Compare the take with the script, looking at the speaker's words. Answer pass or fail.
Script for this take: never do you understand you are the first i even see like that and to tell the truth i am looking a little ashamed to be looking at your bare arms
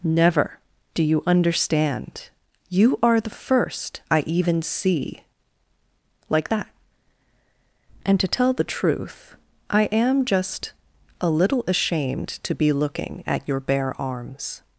fail